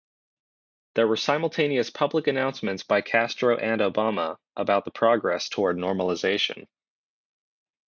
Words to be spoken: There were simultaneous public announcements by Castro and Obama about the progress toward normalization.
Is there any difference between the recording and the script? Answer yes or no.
no